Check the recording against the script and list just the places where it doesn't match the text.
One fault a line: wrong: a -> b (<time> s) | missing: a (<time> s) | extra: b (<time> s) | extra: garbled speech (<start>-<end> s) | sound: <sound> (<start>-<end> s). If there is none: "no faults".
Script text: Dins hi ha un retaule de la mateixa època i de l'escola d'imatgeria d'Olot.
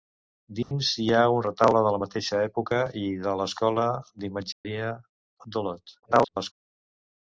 sound: dropout (0.6-0.7 s)
sound: dropout (4.5-4.6 s)
extra: garbled speech (6.0-6.5 s)